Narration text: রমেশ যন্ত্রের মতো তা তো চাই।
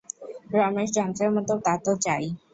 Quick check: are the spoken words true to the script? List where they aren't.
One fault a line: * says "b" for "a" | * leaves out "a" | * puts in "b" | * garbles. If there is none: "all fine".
all fine